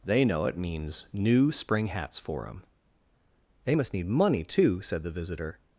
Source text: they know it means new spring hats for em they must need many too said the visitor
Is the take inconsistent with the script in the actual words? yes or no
yes